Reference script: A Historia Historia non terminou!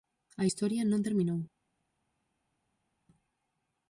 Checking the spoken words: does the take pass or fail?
fail